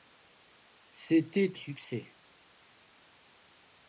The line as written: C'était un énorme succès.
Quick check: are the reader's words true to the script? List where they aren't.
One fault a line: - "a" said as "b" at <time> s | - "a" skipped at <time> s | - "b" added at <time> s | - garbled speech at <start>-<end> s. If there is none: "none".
- "un énorme" skipped at 1.6 s